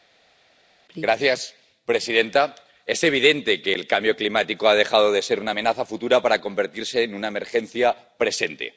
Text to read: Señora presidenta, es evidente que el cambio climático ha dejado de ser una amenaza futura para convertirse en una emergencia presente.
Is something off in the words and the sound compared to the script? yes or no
no